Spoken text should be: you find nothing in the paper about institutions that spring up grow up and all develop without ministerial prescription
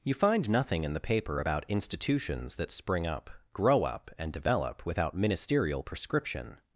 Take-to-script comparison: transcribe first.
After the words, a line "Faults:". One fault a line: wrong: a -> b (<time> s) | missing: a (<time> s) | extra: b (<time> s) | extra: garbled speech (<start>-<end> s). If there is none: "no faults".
you find nothing in the paper about institutions that spring up grow up and develop without ministerial prescription
Faults:
missing: all (4.3 s)